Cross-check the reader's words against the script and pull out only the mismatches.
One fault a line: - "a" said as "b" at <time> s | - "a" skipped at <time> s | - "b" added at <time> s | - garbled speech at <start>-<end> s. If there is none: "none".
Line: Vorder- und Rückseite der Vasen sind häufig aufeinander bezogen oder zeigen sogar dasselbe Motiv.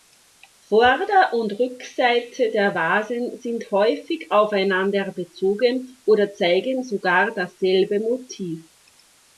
none